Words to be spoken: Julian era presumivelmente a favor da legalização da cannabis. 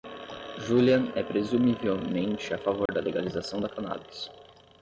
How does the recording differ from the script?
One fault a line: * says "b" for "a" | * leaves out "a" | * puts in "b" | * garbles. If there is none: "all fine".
* says "é" for "era"